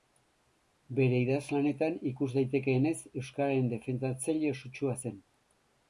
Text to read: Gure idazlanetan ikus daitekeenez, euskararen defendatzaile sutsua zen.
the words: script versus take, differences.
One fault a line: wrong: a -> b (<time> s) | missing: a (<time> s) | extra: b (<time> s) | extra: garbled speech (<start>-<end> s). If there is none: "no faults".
wrong: Gure -> Bere (1.0 s)